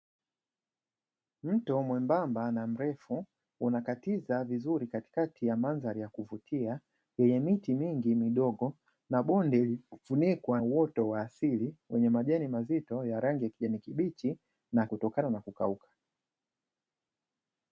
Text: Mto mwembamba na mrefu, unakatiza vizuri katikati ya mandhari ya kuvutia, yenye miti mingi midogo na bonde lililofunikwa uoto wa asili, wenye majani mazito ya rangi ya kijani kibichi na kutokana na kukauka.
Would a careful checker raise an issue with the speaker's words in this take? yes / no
no